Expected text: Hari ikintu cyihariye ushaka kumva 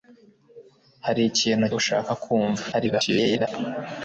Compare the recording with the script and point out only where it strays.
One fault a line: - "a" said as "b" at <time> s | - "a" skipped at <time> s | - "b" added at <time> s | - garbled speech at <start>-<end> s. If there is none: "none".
- "cyihariye" skipped at 1.6 s
- garbled speech at 2.7-3.5 s